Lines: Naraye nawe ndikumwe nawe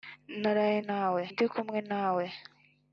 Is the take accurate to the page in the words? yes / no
yes